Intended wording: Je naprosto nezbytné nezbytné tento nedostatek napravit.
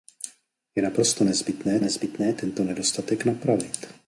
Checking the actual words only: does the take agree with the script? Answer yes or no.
yes